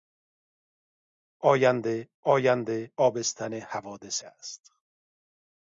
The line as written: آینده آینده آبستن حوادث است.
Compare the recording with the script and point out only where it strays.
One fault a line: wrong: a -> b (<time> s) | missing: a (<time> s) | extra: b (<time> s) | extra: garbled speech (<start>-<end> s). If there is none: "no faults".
no faults